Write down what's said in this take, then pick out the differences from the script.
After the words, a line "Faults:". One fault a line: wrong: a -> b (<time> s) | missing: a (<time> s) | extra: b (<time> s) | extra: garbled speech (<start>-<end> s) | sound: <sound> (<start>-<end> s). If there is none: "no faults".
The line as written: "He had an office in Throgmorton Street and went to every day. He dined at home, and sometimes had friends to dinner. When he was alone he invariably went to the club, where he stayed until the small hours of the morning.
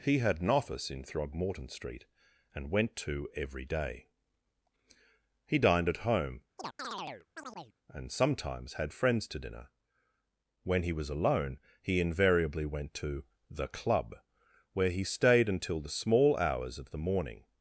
"He had an office in Throgmorton Street and went to every day. He dined at home, and sometimes had friends to dinner. When he was alone he invariably went to the club, where he stayed until the small hours of the morning.
Faults:
sound: chirp (6.6-7.8 s)